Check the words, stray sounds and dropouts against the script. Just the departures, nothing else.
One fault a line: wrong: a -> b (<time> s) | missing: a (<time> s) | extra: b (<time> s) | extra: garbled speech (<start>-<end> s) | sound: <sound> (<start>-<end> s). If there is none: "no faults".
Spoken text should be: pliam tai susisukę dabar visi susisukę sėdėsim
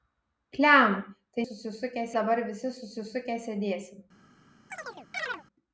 sound: chirp (4.7-5.4 s)